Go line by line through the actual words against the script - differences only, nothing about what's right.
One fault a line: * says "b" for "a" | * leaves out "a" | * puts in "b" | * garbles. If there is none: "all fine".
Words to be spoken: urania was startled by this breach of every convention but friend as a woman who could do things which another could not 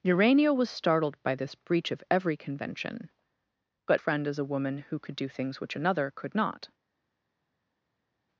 all fine